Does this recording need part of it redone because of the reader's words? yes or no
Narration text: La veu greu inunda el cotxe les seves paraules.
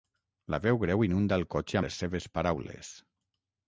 no